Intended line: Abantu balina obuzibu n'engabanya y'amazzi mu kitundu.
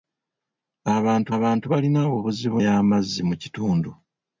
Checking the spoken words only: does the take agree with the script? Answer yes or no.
no